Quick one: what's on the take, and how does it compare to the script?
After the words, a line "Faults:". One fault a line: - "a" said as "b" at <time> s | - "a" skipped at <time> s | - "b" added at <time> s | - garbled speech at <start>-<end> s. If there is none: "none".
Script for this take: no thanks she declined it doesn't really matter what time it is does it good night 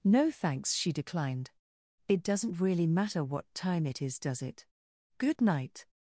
no thanks she declined it doesn't really matter what time it is does it good night
Faults:
none